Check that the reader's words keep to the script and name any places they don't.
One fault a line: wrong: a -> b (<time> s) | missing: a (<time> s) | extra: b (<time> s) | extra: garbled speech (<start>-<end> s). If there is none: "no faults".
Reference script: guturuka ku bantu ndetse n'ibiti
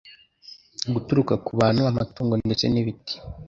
extra: amatungo (1.9 s)